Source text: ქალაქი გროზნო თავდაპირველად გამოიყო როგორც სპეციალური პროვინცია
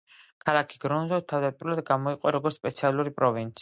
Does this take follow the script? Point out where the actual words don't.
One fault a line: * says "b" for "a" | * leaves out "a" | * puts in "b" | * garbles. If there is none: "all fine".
all fine